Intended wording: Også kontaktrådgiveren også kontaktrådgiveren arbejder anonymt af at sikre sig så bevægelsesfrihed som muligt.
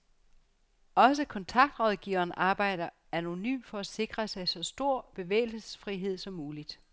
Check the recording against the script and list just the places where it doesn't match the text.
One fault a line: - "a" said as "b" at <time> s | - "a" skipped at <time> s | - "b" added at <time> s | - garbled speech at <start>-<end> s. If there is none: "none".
- "også kontaktrådgiveren" skipped at 2.3 s
- "af" said as "for" at 3.7 s
- "stor" added at 4.6 s